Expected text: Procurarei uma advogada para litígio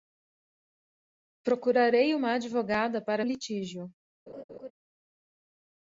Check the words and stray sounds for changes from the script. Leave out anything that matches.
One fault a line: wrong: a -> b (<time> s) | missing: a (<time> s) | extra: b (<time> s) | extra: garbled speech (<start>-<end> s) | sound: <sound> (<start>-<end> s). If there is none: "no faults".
sound: laugh (4.3-4.7 s)